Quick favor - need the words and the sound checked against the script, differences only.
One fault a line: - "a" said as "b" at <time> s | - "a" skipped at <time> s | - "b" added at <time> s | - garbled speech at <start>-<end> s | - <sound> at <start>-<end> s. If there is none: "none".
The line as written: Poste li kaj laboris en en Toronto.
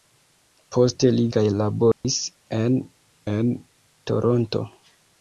- dropout at 1.9-2.0 s